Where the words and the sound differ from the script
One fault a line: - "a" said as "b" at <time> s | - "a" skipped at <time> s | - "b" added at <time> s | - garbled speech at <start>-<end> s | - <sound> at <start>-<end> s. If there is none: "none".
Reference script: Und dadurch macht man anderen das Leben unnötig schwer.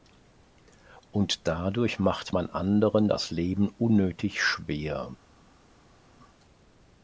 none